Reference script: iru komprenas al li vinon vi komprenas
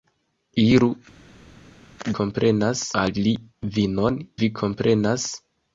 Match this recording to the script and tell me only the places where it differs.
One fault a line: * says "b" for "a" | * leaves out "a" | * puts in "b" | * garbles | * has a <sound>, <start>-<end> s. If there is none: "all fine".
all fine